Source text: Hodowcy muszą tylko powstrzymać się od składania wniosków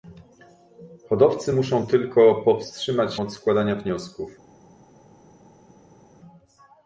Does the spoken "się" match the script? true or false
false